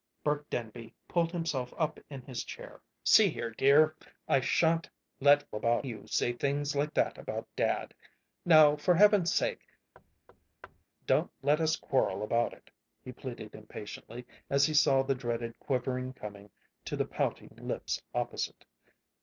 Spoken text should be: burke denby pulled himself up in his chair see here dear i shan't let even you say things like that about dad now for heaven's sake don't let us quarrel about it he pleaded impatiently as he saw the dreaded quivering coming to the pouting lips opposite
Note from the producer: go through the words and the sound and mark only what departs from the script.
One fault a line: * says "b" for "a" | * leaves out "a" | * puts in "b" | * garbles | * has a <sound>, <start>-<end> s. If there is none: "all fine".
* says "about" for "even"
* has a thud, 9.9-10.8 s